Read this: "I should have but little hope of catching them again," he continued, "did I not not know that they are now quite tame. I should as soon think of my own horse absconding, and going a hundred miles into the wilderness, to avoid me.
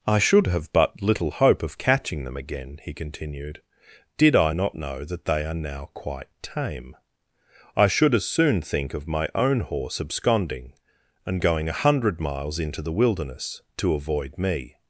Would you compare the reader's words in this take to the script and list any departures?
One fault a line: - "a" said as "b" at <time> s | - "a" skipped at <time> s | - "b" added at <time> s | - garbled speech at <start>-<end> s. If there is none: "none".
- "not" skipped at 4.7 s